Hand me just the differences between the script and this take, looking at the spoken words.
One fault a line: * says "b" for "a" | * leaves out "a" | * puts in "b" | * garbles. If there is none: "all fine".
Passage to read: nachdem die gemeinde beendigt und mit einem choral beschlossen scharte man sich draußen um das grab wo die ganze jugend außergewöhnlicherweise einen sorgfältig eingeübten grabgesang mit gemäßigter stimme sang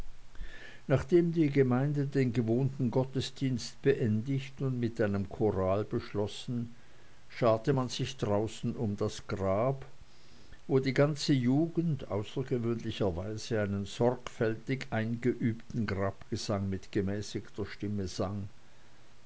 * puts in "den gewohnten gottesdienst"